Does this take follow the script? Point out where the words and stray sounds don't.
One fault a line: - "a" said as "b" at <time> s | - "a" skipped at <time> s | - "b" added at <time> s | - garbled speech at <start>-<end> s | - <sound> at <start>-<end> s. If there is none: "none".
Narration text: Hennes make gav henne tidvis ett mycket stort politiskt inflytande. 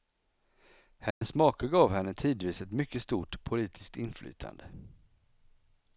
- dropout at 1.1-1.2 s